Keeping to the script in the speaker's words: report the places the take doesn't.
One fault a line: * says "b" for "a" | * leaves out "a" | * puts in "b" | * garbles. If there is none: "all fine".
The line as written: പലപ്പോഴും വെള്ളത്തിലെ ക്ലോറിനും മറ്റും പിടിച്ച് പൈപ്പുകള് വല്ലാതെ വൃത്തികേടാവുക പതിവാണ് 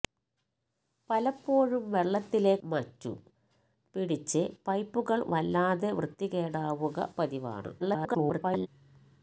* leaves out "ക്ലോറിനും"
* garbles